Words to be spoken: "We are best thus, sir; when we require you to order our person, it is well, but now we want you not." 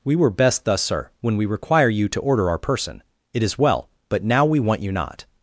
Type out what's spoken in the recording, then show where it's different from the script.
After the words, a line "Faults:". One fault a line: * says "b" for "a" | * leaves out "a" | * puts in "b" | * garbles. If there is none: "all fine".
"We were best thus, sir; when we require you to order our person, it is well, but now we want you not."
Faults:
* says "were" for "are"